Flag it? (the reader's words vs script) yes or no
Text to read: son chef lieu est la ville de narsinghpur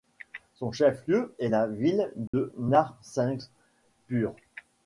no